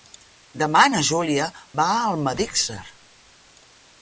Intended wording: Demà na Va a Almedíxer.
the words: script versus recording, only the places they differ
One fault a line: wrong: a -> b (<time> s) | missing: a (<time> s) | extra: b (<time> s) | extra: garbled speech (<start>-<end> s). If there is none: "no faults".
extra: Júlia (1.1 s)